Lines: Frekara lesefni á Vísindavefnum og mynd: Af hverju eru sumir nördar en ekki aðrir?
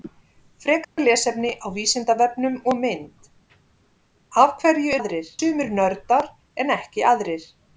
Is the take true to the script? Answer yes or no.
no